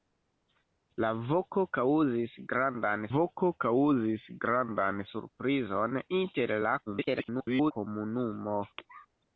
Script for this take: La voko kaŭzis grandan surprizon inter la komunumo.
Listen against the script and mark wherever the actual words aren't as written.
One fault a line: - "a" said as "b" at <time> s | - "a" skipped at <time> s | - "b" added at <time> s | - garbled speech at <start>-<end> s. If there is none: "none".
- "voko kaŭzis grandan" added at 3.2 s
- garbled speech at 6.9-7.7 s